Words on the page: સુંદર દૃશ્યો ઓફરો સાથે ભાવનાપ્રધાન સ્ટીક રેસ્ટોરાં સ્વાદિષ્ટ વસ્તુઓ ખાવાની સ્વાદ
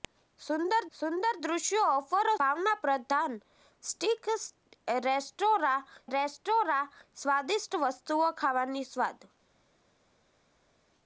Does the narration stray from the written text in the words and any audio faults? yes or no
yes